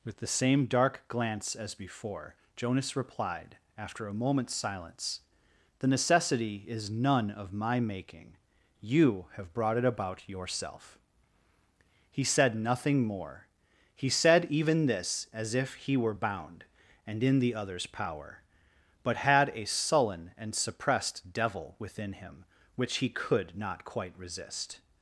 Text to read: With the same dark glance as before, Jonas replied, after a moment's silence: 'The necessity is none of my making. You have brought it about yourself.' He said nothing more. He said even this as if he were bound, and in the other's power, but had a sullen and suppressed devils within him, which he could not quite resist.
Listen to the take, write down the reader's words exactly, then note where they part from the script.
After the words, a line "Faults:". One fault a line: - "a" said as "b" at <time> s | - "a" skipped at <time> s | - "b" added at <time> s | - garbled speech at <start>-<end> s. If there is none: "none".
With the same dark glance as before, Jonas replied, after a moment's silence: 'The necessity is none of my making. You have brought it about yourself.' He said nothing more. He said even this as if he were bound, and in the other's power, but had a sullen and suppressed devil within him, which he could not quite resist.
Faults:
- "devils" said as "devil" at 21.3 s